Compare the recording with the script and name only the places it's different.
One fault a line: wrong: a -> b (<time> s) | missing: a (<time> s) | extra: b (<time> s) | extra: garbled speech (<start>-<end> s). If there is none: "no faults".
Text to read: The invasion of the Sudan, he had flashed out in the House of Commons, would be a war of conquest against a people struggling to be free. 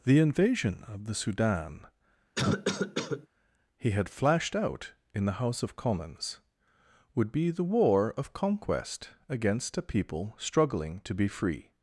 wrong: a -> the (7.5 s)